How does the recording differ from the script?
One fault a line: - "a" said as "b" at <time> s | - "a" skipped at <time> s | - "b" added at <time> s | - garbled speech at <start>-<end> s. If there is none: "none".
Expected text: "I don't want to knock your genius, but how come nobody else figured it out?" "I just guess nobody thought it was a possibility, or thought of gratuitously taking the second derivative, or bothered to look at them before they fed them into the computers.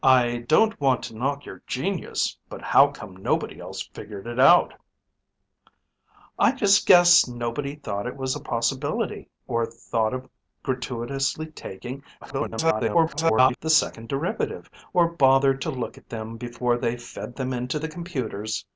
- garbled speech at 12.2-13.6 s